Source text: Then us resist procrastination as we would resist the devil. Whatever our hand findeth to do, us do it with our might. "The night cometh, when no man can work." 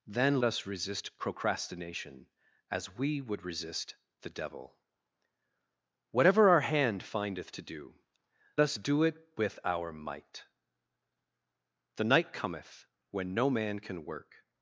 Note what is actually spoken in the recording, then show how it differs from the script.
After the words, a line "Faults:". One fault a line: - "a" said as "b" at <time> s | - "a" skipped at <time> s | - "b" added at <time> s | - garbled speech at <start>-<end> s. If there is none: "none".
Then us resist procrastination as we would resist the devil. Whatever our hand findeth to do, us do it with our might. "The night cometh, when no man can work."
Faults:
none